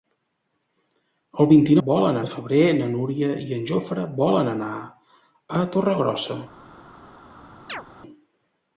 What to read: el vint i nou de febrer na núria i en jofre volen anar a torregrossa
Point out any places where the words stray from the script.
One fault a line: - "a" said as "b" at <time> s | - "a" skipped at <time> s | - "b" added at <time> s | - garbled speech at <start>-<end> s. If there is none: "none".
- "nou" said as "volen" at 1.9 s